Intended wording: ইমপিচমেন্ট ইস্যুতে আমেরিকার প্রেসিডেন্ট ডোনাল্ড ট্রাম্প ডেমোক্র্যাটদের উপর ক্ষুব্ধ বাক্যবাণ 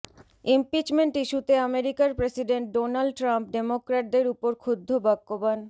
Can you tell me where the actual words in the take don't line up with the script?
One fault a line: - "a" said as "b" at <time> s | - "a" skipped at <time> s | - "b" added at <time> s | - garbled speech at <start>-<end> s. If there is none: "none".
none